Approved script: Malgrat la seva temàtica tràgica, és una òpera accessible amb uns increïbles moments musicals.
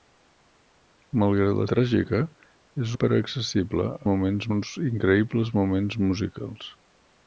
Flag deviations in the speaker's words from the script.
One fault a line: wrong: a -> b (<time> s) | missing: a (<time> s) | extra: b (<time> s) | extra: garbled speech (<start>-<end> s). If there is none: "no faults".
missing: seva temàtica (1.6 s)
missing: una (3.0 s)
wrong: amb -> moments (4.1 s)